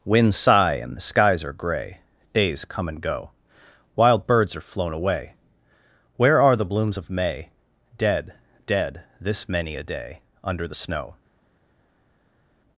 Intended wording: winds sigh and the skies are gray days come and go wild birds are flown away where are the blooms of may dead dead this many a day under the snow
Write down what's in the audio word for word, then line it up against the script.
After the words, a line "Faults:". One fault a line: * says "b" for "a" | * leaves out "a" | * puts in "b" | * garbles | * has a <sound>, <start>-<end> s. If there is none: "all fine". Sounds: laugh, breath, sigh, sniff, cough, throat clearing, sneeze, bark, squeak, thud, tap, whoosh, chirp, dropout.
winds sigh and the skies are gray days come and go wild birds are flown away where are the blooms of may dead dead this many a day under the snow
Faults:
all fine